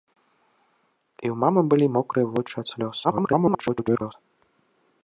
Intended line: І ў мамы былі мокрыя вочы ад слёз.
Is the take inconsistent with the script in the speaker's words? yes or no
yes